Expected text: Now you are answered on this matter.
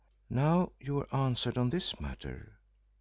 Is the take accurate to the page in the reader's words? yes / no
yes